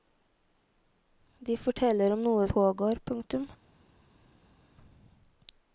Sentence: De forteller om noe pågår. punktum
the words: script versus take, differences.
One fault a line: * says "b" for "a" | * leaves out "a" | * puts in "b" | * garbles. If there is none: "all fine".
all fine